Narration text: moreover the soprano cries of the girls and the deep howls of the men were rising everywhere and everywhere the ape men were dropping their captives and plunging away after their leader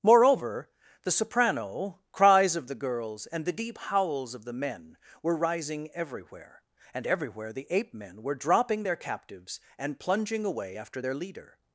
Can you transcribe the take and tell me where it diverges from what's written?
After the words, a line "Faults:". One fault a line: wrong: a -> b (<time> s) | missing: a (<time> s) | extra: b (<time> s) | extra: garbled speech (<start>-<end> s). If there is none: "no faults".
moreover the soprano cries of the girls and the deep howls of the men were rising everywhere and everywhere the ape men were dropping their captives and plunging away after their leader
Faults:
no faults